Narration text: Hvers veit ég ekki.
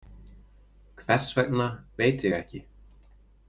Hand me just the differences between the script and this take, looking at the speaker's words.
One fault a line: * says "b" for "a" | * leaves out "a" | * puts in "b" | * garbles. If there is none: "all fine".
* puts in "vegna"